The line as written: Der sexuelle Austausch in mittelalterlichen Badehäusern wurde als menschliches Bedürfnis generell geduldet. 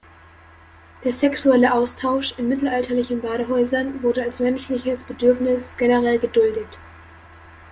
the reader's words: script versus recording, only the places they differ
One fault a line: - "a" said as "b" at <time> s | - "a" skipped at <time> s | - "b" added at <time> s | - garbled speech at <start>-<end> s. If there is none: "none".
none